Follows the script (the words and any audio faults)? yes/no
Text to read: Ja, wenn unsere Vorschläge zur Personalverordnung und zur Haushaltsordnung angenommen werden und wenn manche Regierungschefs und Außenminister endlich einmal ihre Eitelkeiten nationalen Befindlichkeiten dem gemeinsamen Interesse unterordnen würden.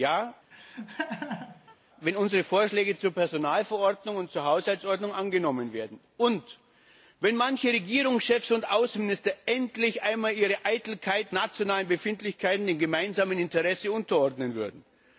no